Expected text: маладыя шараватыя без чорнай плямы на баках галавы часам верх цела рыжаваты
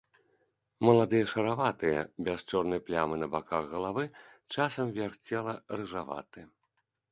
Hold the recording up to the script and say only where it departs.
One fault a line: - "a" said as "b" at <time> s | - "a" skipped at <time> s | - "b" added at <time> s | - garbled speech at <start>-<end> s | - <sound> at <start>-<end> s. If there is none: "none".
none